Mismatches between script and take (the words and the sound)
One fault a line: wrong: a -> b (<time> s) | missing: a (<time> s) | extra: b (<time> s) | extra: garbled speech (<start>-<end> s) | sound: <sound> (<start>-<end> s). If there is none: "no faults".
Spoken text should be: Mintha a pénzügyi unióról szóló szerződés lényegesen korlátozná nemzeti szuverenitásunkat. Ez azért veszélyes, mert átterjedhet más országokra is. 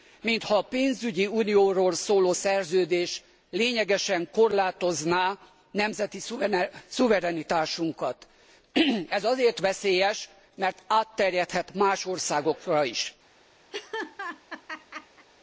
sound: laugh (13.7-15.3 s)